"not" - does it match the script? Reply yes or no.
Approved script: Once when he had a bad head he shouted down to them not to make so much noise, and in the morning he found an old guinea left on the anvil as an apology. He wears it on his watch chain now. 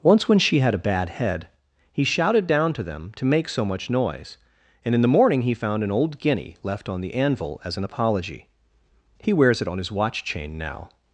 no